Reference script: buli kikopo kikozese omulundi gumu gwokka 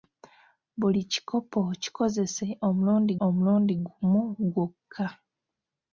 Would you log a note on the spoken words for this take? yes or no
yes